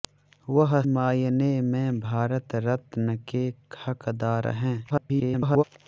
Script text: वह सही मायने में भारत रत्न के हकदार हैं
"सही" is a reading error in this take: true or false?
true